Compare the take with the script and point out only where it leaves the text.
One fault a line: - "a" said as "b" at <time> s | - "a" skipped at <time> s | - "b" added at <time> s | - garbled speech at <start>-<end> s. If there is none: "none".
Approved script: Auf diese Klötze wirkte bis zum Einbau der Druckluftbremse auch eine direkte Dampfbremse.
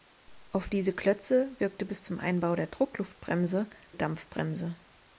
- "auch eine direkte" skipped at 3.7 s